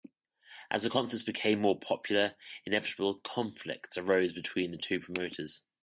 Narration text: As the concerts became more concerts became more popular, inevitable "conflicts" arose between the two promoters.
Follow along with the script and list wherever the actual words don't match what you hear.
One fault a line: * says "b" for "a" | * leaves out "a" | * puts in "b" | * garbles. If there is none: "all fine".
* leaves out "concerts became more"